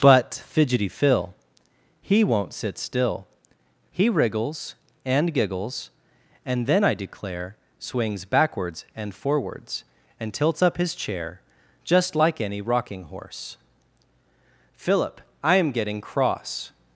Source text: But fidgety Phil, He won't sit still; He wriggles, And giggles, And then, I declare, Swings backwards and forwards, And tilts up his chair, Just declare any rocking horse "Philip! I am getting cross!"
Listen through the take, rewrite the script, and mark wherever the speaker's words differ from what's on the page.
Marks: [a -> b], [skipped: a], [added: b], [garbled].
But fidgety Phil, He won't sit still; He wriggles, And giggles, And then, I declare, Swings backwards and forwards, And tilts up his chair, Just [declare -> like] any rocking horse "Philip! I am getting cross!"